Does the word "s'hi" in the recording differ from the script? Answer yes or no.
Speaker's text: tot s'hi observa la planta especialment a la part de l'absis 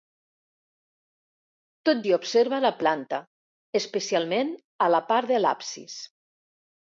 no